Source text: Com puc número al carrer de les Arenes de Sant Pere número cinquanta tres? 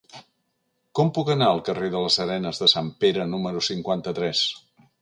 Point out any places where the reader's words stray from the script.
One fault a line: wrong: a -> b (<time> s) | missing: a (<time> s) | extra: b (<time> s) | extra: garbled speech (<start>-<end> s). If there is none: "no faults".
wrong: número -> anar (1.4 s)